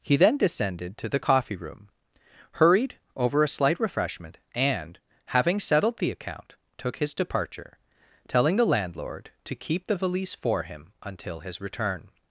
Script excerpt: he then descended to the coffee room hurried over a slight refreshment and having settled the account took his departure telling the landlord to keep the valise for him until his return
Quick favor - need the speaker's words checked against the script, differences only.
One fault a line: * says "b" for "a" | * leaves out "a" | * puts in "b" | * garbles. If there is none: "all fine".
all fine